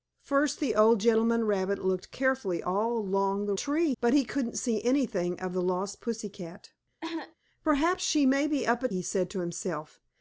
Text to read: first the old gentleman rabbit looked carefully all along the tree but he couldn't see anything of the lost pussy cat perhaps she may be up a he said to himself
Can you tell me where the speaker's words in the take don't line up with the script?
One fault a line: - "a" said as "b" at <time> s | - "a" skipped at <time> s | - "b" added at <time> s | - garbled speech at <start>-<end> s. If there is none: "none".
none